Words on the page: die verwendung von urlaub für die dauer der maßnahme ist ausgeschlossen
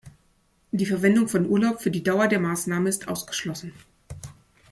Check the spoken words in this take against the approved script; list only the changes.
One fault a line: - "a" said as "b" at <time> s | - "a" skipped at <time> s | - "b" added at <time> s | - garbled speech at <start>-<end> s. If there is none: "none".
none